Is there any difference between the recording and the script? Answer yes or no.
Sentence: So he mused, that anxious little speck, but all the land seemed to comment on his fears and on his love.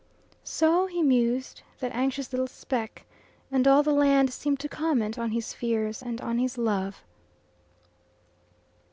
yes